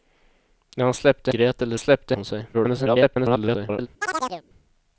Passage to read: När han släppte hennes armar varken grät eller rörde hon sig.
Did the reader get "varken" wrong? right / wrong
wrong